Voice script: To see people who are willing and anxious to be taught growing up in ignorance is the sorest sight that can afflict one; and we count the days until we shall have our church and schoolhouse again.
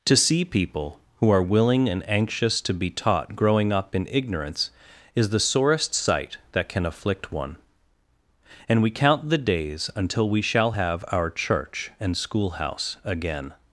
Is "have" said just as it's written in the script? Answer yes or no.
yes